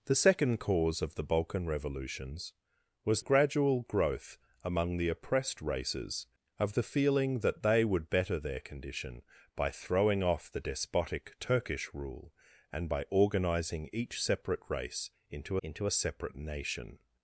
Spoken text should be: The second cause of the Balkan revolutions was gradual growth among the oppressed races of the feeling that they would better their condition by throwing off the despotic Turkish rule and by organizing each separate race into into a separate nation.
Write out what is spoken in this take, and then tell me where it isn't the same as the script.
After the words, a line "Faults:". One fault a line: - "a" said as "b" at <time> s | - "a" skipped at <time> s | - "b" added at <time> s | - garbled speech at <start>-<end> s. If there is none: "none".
The second cause of the Balkan revolutions was gradual growth among the oppressed races of the feeling that they would better their condition by throwing off the despotic Turkish rule and by organizing each separate race into into a separate nation.
Faults:
none